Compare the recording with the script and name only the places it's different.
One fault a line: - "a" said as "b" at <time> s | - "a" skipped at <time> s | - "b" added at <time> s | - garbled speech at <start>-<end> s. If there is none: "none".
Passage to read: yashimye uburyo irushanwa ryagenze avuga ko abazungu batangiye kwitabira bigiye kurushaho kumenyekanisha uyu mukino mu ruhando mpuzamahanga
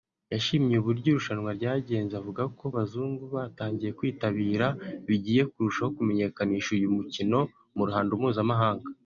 none